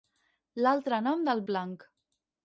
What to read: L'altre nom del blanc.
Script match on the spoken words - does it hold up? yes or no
yes